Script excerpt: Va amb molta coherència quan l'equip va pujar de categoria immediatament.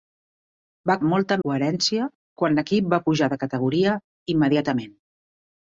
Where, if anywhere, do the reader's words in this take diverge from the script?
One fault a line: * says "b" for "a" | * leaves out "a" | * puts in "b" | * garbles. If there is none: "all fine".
all fine